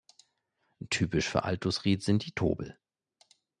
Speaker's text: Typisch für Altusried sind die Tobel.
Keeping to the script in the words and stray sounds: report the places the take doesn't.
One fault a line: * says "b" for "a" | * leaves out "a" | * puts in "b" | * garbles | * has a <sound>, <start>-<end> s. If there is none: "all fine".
all fine